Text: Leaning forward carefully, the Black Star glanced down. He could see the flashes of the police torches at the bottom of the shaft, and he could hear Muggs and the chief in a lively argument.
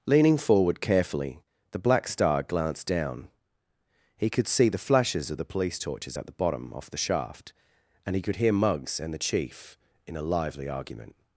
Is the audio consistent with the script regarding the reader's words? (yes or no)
no